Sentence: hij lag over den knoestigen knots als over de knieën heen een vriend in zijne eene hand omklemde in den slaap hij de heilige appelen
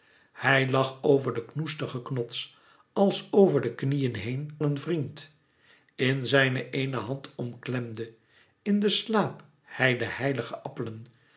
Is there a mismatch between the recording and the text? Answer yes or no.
no